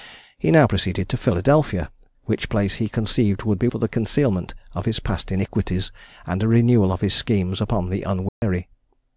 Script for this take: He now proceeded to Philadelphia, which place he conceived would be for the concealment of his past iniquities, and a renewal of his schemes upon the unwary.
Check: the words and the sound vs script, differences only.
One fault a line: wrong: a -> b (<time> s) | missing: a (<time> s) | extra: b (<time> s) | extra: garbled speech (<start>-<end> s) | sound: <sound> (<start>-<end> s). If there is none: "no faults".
sound: dropout (8.3-8.4 s)